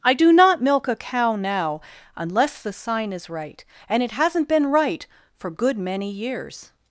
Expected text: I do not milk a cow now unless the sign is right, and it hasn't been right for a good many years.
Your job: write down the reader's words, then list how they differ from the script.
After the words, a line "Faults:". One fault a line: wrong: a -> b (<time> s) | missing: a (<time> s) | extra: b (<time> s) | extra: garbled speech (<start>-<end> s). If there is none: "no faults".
I do not milk a cow now unless the sign is right, and it hasn't been right for good many years.
Faults:
missing: a (5.5 s)